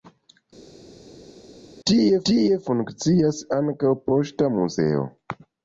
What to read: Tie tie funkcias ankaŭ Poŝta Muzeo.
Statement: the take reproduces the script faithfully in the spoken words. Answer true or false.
true